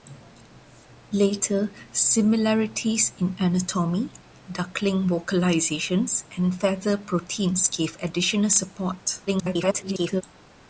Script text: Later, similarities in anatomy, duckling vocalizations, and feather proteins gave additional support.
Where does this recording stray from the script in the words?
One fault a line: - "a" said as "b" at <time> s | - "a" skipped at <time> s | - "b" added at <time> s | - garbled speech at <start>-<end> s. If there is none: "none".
- garbled speech at 9.3-10.2 s